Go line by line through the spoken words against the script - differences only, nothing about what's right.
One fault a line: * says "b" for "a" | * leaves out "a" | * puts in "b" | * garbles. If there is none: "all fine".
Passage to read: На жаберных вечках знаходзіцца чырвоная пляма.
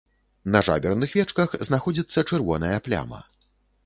all fine